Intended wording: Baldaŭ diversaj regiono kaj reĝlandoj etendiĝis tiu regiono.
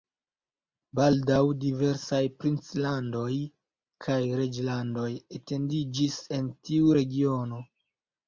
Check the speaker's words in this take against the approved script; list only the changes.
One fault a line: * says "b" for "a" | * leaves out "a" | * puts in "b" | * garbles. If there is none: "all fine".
* says "princlandoj" for "regiono"
* puts in "en"